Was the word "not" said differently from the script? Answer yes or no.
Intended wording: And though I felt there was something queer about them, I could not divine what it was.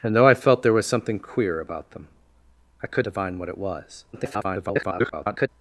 yes